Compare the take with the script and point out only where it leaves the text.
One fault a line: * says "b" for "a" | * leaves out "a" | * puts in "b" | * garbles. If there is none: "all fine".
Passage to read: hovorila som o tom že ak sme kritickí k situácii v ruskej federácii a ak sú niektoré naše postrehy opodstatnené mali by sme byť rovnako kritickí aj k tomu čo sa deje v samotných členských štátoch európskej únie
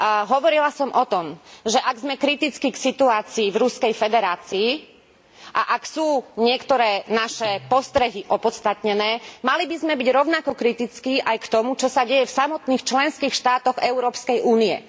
all fine